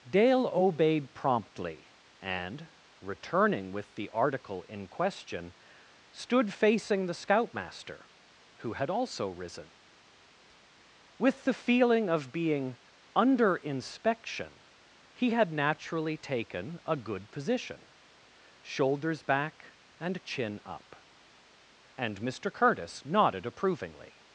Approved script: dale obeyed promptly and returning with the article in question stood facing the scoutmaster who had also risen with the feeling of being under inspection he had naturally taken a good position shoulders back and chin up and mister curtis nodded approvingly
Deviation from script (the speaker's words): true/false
false